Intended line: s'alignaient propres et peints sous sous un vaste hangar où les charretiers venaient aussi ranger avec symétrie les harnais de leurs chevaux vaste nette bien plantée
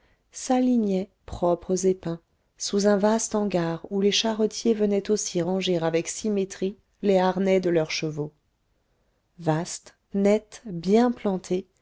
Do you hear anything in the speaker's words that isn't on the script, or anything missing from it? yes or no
yes